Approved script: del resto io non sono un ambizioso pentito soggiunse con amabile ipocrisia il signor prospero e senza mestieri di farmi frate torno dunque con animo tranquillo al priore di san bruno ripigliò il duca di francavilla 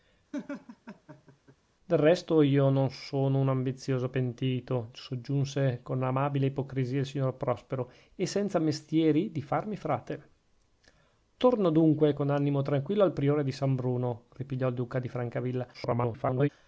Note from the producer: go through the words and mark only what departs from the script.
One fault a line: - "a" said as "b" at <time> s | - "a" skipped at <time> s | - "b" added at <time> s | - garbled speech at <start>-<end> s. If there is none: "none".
- garbled speech at 15.7-16.5 s